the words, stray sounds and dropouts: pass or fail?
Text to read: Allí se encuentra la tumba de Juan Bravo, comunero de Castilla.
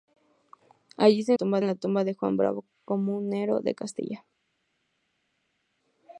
fail